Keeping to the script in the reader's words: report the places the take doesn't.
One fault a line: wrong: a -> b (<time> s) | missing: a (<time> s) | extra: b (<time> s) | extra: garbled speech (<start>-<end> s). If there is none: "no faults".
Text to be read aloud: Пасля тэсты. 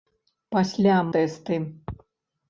no faults